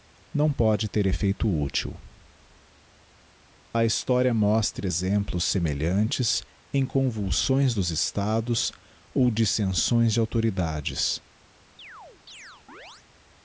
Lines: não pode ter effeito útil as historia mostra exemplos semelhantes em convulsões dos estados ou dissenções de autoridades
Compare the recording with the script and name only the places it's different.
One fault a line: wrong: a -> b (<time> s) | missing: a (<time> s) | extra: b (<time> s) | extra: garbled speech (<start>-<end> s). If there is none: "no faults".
wrong: as -> a (3.7 s)